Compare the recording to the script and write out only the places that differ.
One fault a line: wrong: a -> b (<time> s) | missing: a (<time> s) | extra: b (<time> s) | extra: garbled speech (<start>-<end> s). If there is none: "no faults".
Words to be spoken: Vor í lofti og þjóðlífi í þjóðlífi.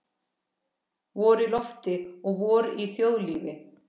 wrong: þjóðlífi -> vor (2.4 s)